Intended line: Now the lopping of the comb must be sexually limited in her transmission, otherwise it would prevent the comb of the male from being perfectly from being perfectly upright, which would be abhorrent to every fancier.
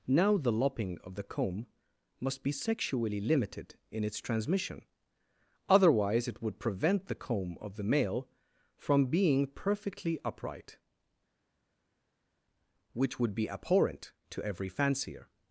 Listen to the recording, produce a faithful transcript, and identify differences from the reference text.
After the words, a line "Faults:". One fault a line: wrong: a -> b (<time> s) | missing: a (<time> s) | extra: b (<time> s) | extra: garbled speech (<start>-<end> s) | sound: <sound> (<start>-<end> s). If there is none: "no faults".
Now the lopping of the comb must be sexually limited in its transmission, otherwise it would prevent the comb of the male from being perfectly upright, which would be abhorrent to every fancier.
Faults:
wrong: her -> its (4.0 s)
missing: from being perfectly (10.2 s)